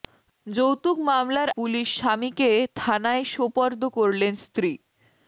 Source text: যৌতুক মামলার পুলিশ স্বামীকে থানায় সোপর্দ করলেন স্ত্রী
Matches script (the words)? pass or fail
pass